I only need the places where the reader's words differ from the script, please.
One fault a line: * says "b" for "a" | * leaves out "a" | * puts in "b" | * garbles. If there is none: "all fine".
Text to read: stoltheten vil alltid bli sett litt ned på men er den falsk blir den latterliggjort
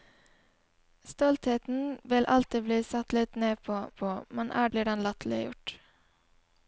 * puts in "på"
* leaves out "den falsk"